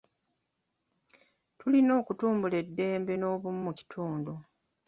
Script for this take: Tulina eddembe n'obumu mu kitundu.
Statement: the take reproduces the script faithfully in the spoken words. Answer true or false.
false